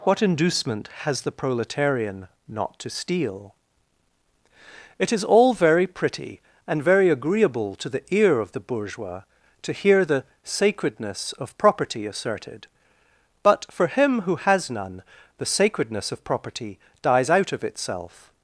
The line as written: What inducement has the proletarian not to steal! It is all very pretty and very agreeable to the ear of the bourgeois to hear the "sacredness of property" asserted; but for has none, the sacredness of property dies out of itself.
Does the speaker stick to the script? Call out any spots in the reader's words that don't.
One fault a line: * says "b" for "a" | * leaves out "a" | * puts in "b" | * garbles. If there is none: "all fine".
* puts in "him who"